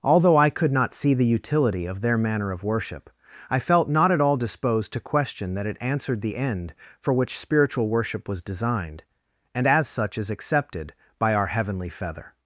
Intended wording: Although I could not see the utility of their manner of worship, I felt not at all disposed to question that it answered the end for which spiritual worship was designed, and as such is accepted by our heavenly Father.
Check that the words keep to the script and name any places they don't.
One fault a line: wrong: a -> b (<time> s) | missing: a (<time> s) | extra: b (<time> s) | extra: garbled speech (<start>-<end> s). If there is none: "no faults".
wrong: Father -> Feather (11.9 s)